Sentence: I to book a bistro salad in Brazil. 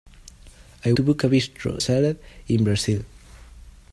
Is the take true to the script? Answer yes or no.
yes